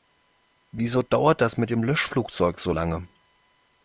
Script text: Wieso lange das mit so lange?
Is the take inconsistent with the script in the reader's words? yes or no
yes